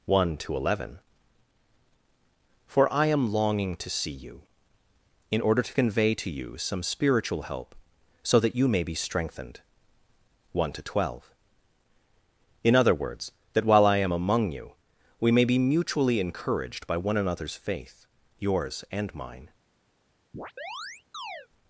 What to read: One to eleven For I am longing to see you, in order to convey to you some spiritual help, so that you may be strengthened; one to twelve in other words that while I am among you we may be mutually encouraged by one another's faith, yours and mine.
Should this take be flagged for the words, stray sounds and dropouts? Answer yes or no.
yes